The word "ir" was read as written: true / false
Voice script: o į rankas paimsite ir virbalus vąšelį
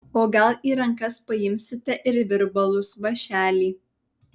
true